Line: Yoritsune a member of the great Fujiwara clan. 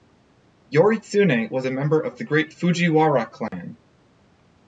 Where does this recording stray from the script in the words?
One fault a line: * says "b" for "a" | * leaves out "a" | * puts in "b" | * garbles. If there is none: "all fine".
* puts in "was"